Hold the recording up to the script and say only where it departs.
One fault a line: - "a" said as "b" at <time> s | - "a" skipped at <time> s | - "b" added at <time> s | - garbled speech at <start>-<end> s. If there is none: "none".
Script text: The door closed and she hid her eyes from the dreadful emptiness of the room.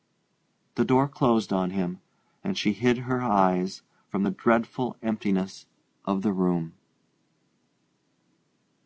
- "on him" added at 1.5 s